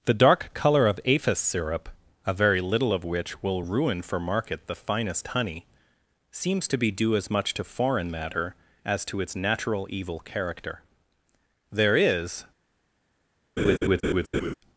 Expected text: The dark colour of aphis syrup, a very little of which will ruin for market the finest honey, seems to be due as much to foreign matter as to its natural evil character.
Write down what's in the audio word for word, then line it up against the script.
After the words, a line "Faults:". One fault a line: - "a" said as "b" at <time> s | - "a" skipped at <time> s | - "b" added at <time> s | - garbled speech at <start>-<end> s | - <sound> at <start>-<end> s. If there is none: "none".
The dark colour of aphis syrup, a very little of which will ruin for market the finest honey, seems to be due as much to foreign matter as to its natural evil character. There is
Faults:
- "There is" added at 11.7 s
- laugh at 13.6-14.5 s